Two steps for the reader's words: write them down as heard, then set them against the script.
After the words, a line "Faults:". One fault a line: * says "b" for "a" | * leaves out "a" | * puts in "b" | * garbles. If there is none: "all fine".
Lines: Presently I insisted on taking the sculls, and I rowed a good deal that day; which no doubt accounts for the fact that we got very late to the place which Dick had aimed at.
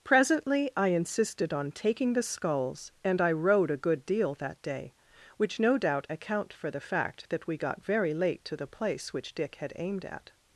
Presently I insisted on taking the sculls, and I rowed a good deal that day; which no doubt account for the fact that we got very late to the place which Dick had aimed at.
Faults:
* says "account" for "accounts"